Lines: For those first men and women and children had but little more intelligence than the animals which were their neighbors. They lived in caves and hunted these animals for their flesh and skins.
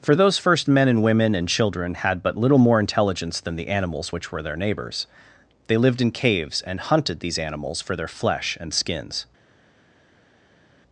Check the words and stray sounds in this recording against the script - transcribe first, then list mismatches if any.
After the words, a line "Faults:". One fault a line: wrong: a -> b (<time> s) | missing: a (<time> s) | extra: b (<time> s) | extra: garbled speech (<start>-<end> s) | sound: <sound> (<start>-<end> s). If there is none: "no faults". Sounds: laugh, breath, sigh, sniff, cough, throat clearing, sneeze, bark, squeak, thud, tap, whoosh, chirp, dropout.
For those first men and women and children had but little more intelligence than the animals which were their neighbors. They lived in caves and hunted these animals for their flesh and skins.
Faults:
no faults